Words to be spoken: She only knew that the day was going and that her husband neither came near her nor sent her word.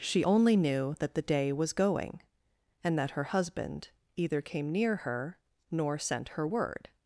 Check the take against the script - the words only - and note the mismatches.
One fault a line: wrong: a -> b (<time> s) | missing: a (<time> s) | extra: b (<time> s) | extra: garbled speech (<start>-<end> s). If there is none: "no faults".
wrong: neither -> either (4.1 s)